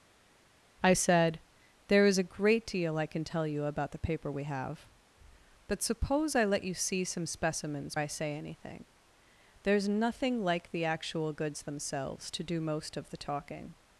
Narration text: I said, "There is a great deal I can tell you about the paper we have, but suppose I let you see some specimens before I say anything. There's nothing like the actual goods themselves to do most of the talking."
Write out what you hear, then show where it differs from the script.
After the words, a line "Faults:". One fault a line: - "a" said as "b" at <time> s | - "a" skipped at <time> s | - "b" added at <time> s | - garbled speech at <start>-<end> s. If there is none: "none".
I said, "There is a great deal I can tell you about the paper we have, but suppose I let you see some specimens I say anything. There's nothing like the actual goods themselves to do most of the talking."
Faults:
- "before" skipped at 7.9 s